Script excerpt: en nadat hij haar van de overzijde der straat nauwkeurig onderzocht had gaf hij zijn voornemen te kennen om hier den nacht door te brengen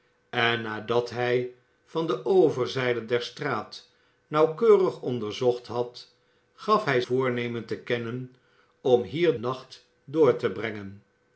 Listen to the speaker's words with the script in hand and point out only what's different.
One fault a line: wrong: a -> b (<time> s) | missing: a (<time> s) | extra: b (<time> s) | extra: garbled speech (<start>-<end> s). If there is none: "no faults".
missing: haar (1.5 s)
missing: zijn (7.0 s)
missing: den (9.4 s)